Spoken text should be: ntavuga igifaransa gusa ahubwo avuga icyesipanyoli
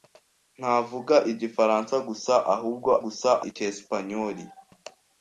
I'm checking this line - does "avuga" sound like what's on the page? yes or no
no